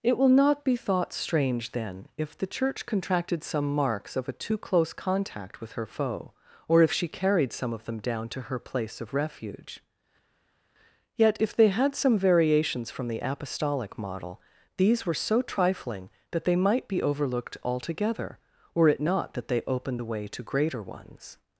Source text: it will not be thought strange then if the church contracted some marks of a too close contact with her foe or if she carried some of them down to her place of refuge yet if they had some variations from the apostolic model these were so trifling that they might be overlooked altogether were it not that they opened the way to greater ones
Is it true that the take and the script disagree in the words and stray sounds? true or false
false